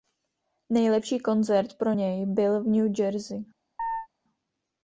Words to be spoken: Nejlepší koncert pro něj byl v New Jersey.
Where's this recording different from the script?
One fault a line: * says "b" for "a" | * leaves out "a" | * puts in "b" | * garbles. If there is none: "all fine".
all fine